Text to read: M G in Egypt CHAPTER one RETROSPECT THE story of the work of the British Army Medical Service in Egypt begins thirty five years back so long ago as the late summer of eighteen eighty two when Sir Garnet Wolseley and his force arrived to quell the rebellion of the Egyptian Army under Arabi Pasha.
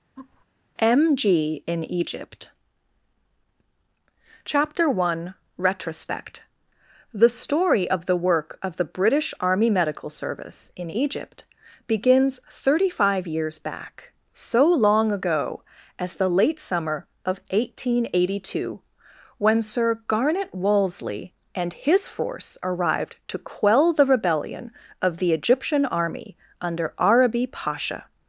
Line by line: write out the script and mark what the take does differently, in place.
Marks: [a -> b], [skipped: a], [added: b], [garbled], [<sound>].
[laugh] M G in Egypt CHAPTER one RETROSPECT THE story of the work of the British Army Medical Service in Egypt begins thirty five years back so long ago as the late summer of eighteen eighty two when Sir Garnet Wolseley and his force arrived to quell the rebellion of the Egyptian Army under Arabi Pasha.